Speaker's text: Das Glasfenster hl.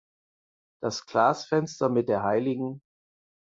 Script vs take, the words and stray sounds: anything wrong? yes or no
yes